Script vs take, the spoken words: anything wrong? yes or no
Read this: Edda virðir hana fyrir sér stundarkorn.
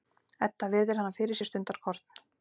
no